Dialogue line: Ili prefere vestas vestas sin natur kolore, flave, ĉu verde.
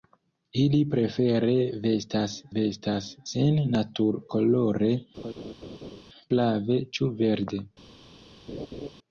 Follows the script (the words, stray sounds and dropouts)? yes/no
no